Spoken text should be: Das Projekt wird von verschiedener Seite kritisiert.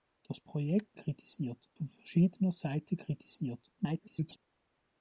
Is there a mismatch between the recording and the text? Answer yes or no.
yes